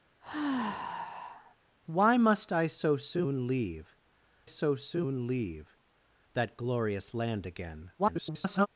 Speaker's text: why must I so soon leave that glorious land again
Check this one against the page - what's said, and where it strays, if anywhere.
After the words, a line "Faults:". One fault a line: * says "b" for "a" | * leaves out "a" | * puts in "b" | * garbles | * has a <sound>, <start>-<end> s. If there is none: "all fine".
why must I so soon leave so soon leave that glorious land again [garbled]
Faults:
* has a sigh, 0.2-1.5 s
* puts in "so soon leave"
* garbles